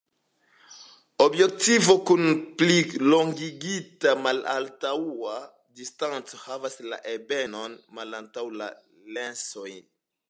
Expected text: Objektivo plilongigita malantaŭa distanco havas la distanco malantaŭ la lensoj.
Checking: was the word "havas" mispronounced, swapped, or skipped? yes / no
no